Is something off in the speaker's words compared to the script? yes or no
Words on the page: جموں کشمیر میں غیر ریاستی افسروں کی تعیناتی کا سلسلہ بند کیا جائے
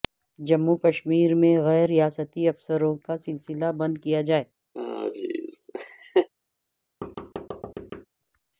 yes